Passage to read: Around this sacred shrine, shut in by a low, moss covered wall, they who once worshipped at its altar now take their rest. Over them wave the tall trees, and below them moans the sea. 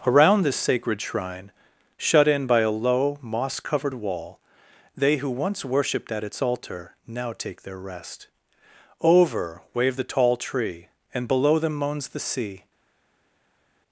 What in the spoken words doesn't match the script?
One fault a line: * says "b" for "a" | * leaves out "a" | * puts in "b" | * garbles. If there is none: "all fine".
* leaves out "them"
* says "tree" for "trees"